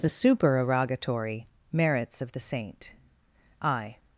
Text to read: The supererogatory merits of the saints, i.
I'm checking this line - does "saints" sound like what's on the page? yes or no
no